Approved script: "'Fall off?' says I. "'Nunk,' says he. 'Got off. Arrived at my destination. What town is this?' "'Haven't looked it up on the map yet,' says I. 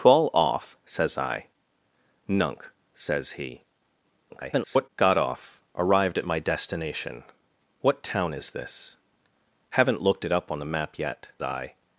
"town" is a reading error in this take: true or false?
false